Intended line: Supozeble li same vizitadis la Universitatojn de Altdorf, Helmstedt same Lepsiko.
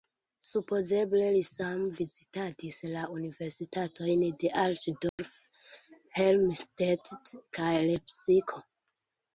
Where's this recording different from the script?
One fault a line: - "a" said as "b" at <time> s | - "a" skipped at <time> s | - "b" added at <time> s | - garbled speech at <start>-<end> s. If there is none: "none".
- "same" said as "kaj" at 7.6 s